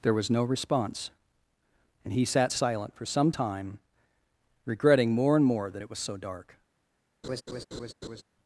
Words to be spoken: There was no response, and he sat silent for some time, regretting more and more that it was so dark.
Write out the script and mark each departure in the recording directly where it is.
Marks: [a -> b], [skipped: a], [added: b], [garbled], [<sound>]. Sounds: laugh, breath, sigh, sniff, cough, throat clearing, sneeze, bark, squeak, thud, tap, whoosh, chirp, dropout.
There was no response, and he sat silent for some time, regretting more and more that it was so dark. [laugh]